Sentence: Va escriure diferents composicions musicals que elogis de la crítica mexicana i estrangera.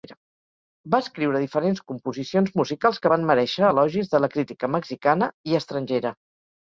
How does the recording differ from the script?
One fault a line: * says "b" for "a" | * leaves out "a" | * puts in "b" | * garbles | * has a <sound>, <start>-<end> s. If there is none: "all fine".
* puts in "van merèixer"